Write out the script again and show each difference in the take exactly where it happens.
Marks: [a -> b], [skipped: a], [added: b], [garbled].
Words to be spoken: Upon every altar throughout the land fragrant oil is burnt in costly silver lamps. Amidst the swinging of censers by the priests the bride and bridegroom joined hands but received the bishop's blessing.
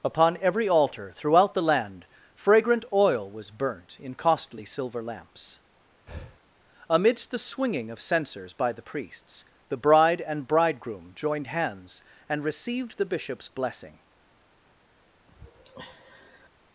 Upon every altar throughout the land fragrant oil [is -> was] burnt in costly silver lamps. Amidst the swinging of censers by the priests the bride and bridegroom joined hands [but -> and] received the bishop's blessing.